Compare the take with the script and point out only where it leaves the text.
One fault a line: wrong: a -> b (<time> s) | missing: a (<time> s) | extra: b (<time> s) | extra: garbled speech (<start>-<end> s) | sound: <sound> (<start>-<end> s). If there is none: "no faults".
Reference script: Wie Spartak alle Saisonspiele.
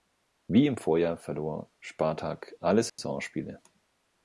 extra: im Vorjahr verlor (0.7 s)
sound: dropout (2.9-3.0 s)